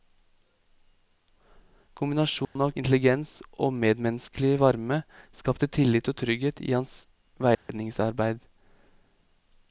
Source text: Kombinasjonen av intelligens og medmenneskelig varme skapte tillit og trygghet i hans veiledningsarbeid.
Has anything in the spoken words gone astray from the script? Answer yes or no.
no